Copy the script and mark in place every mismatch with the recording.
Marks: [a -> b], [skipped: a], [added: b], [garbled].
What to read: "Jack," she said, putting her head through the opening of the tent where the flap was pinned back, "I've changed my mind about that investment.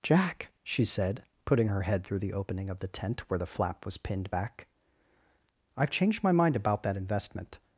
"Jack," she said, putting her head through the opening of the tent where the flap was pinned back, "I've changed my mind about that investment.